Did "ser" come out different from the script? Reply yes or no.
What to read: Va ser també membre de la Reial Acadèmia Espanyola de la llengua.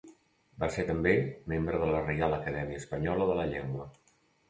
no